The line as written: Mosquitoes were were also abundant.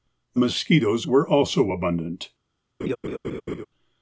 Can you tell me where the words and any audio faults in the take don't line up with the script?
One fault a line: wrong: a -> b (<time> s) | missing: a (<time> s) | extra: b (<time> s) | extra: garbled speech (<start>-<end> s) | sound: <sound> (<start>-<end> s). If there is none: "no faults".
missing: were (1.3 s)
sound: laugh (2.8-3.7 s)